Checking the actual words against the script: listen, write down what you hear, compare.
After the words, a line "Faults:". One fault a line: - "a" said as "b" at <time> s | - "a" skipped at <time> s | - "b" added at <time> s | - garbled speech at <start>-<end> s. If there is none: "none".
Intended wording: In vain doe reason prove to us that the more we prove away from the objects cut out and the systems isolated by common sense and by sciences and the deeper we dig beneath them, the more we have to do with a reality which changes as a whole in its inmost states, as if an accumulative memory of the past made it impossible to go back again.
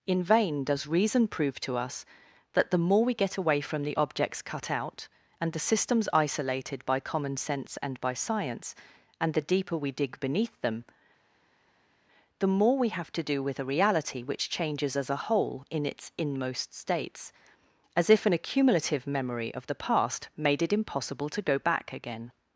In vain does reason prove to us that the more we get away from the objects cut out and the systems isolated by common sense and by science and the deeper we dig beneath them, the more we have to do with a reality which changes as a whole in its inmost states, as if an accumulative memory of the past made it impossible to go back again.
Faults:
- "doe" said as "does" at 0.6 s
- "prove" said as "get" at 3.1 s
- "sciences" said as "science" at 8.1 s